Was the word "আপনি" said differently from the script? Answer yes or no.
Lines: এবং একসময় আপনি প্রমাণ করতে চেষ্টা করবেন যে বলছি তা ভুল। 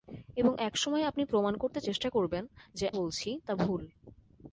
no